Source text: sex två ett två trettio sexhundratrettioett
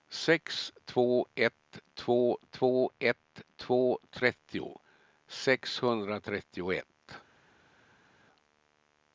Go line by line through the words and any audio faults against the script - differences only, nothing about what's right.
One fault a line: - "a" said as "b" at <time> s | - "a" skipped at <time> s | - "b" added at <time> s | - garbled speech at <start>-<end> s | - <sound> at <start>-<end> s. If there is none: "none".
- "två ett två" added at 2.5 s